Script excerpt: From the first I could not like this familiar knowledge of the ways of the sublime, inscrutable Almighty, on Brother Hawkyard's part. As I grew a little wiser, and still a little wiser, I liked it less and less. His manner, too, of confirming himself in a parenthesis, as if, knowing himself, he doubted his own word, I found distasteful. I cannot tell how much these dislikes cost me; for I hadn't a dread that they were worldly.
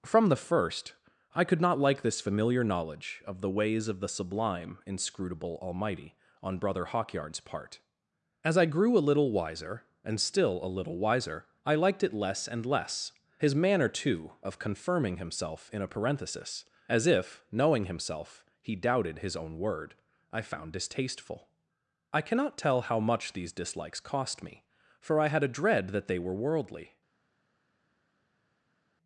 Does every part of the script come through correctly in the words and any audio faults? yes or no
no